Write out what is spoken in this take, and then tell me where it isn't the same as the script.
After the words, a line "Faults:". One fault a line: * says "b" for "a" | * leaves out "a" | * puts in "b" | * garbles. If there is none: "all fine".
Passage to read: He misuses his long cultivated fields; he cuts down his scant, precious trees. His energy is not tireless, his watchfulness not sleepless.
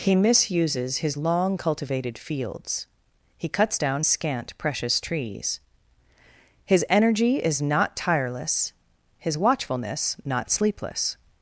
He misuses his long cultivated fields; he cuts down scant, precious trees. His energy is not tireless, his watchfulness not sleepless.
Faults:
* leaves out "his"